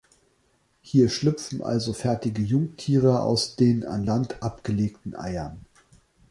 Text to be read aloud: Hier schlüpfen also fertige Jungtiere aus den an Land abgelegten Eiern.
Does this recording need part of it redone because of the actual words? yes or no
no